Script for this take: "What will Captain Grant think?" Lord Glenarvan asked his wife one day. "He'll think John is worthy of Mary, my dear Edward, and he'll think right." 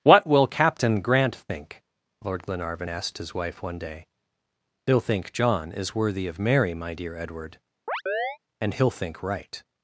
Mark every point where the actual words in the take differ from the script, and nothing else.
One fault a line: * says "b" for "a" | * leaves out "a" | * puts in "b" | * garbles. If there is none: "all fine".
all fine